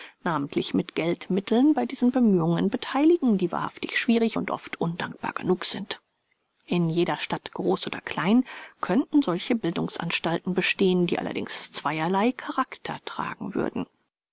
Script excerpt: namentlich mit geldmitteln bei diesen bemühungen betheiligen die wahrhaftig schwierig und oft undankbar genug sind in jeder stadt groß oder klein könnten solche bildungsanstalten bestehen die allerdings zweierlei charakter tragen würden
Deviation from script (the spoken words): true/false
false